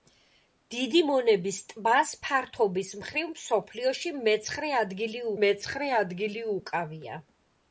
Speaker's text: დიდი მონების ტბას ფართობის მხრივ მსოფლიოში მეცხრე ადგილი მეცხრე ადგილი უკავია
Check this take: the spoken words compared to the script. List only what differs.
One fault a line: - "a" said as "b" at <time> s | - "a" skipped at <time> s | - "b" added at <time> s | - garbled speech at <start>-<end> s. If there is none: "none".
none